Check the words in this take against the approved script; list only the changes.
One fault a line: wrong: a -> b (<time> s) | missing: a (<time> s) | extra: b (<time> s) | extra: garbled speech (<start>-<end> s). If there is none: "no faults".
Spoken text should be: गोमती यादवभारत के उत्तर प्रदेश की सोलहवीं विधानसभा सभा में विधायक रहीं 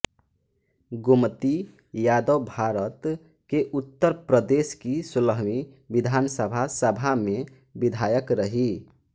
no faults